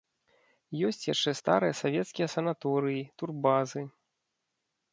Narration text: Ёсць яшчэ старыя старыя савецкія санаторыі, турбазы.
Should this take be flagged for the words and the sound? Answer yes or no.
yes